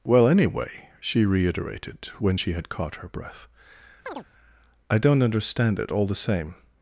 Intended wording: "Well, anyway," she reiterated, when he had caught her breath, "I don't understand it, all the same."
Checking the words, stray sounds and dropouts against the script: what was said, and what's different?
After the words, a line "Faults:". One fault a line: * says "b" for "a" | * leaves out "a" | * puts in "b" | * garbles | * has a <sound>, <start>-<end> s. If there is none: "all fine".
"Well, anyway," she reiterated, when she had caught her breath, "I don't understand it, all the same."
Faults:
* says "she" for "he"
* has a chirp, 4.1-4.3 s